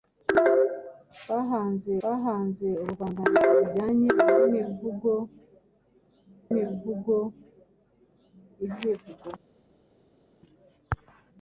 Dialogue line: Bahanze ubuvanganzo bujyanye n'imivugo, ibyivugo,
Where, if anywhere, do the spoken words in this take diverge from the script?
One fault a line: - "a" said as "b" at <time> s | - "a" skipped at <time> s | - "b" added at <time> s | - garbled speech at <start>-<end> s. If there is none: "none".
- "bahanze" added at 2.0 s
- "n'imivugo" added at 6.5 s